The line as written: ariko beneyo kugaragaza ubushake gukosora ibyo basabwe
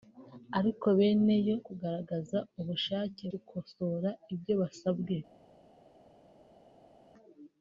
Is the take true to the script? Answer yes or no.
yes